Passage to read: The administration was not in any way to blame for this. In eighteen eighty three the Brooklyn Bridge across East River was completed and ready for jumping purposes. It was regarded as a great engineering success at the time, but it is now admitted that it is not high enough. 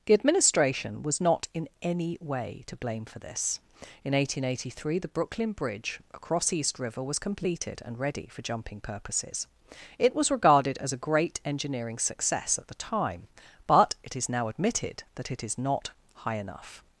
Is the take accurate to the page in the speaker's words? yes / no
yes